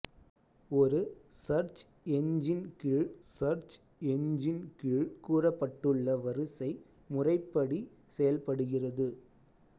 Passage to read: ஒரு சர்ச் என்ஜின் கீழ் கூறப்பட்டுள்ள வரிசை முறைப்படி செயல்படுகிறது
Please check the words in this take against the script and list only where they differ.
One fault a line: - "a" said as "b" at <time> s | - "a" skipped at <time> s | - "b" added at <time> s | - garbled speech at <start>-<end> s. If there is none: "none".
- "சர்ச் என்ஜின் கீழ்" added at 3.3 s